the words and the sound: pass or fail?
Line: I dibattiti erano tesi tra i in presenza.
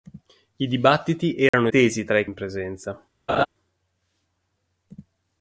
fail